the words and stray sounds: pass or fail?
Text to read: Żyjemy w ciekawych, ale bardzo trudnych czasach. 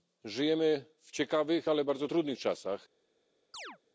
fail